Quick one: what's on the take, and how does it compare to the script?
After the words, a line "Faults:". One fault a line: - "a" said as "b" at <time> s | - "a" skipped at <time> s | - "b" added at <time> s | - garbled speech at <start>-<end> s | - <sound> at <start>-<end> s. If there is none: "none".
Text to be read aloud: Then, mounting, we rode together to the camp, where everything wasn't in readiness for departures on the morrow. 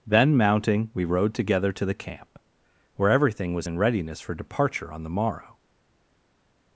Then, mounting, we rode together to the camp, where everything was in readiness for departure on the morrow.
Faults:
- "wasn't" said as "was" at 3.5 s
- "departures" said as "departure" at 4.3 s